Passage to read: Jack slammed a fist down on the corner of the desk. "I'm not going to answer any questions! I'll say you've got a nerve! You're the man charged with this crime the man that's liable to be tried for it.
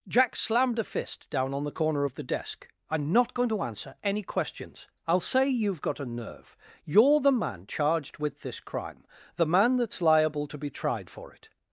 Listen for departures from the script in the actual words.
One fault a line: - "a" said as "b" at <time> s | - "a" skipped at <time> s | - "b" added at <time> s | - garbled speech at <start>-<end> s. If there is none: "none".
none